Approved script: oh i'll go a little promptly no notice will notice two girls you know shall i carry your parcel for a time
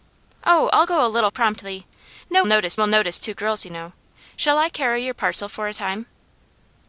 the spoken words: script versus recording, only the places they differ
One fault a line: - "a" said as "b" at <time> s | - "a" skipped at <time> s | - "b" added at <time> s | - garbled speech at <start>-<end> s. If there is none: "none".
none